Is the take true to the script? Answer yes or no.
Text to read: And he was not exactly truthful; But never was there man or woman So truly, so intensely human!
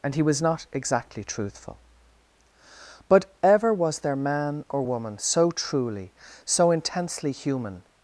no